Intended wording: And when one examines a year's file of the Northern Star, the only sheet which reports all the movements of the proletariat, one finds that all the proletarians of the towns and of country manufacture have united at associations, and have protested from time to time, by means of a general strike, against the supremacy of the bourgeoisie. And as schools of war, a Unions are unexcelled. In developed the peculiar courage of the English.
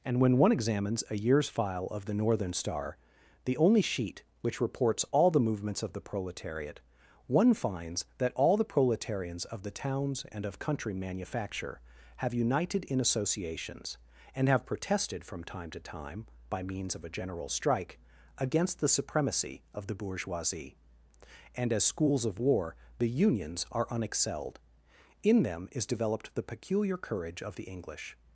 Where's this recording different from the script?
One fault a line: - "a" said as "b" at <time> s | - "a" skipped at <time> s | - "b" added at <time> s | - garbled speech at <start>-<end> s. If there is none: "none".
- "at" said as "in" at 12.8 s
- "a" said as "the" at 23.0 s
- "them is" added at 25.4 s